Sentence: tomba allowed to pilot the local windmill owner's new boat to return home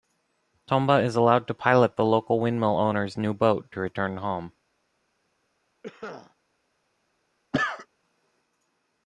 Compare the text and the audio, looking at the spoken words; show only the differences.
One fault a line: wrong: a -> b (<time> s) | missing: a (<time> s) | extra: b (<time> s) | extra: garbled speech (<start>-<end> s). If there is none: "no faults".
extra: is (1.0 s)